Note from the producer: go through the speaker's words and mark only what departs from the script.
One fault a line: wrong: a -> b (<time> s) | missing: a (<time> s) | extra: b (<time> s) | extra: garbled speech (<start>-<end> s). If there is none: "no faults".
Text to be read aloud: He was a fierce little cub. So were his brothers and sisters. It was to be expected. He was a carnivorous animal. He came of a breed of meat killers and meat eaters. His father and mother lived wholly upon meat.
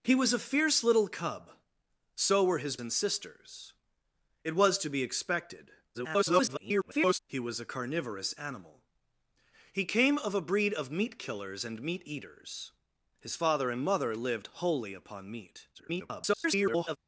missing: brothers (2.8 s)
extra: garbled speech (5.9-7.2 s)
extra: garbled speech (15.7-17.0 s)